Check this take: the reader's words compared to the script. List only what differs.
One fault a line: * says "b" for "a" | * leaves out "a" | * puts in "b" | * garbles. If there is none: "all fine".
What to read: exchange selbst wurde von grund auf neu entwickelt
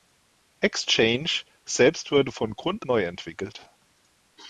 * leaves out "auf"